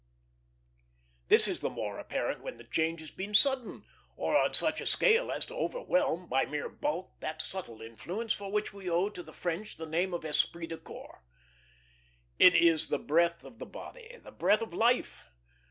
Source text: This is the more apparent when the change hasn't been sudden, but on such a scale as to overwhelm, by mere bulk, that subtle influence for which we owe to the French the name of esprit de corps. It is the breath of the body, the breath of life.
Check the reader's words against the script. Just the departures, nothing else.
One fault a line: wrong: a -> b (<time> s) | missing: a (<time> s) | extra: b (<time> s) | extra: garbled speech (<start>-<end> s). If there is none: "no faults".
wrong: hasn't -> has (3.0 s)
wrong: but -> or (4.1 s)